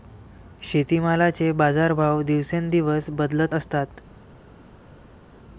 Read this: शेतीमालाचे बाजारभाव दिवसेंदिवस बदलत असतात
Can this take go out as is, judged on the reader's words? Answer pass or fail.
pass